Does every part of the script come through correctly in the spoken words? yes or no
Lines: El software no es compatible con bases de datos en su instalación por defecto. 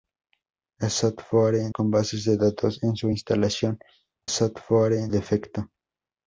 no